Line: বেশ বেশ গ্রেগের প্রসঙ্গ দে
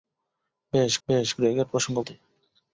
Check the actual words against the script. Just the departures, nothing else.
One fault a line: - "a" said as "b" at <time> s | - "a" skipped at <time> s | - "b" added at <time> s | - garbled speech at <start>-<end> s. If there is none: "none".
none